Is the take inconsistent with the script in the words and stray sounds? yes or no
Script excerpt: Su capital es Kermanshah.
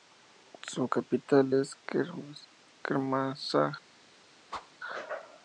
yes